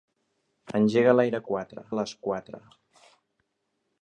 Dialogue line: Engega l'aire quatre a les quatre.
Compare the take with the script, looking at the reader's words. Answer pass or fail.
pass